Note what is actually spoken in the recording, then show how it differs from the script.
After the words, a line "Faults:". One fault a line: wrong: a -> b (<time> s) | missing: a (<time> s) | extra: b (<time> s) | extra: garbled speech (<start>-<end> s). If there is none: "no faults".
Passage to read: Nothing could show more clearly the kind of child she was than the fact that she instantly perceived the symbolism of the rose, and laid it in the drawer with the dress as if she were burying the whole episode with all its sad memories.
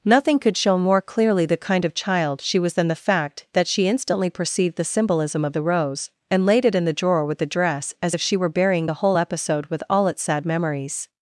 Nothing could show more clearly the kind of child she was than the fact that she instantly perceived the symbolism of the rose, and laid it in the drawer with the dress as if she were burying the whole episode with all its sad memories.
Faults:
no faults